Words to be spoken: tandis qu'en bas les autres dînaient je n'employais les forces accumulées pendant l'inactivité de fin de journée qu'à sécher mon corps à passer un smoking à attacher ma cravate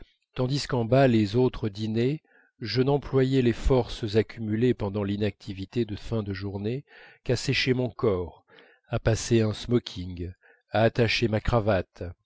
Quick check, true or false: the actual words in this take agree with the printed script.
true